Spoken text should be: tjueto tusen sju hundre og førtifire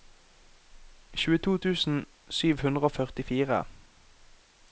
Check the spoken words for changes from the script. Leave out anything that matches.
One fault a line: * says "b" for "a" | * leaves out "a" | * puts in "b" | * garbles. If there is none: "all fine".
all fine